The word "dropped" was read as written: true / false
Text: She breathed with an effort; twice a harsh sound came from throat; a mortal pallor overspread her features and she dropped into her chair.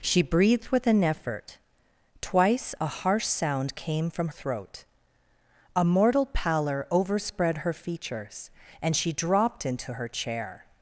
true